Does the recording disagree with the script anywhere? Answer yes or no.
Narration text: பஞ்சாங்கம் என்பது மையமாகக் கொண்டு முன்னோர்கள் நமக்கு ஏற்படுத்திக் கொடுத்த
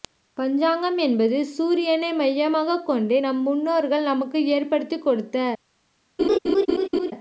yes